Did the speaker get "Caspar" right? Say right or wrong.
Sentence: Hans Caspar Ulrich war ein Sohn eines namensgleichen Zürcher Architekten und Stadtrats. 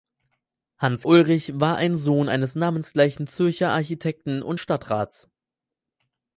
wrong